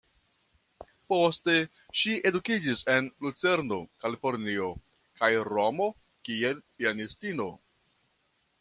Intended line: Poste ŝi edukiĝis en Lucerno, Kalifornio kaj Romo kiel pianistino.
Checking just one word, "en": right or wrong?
right